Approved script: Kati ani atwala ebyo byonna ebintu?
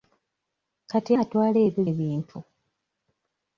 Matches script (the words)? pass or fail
fail